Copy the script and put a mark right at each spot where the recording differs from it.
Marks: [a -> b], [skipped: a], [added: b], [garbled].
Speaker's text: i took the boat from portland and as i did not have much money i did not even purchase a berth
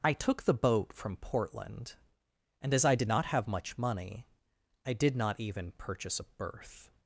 i took the boat from portland and as i did not have much money i did not even purchase a berth